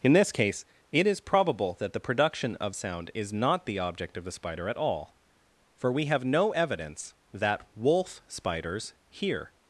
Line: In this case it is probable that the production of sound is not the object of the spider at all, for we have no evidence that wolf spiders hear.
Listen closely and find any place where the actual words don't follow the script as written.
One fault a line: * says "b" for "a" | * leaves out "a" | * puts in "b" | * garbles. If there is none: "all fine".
all fine